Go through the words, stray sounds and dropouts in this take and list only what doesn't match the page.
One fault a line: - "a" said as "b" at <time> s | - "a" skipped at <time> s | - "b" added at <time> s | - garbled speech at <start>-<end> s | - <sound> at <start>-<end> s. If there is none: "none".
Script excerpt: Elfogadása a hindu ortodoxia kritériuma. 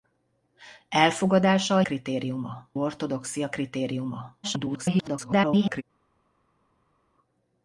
- "hindu" said as "kritériuma" at 1.8 s
- garbled speech at 4.4-5.8 s